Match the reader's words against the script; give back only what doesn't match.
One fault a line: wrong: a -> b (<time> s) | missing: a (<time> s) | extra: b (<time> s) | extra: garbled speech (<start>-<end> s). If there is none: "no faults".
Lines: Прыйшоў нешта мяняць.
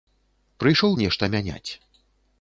no faults